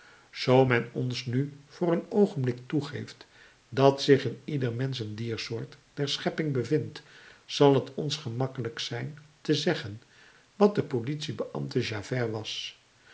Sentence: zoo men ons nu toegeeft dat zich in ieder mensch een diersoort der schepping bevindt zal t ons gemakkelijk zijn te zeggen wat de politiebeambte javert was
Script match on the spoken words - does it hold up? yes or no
no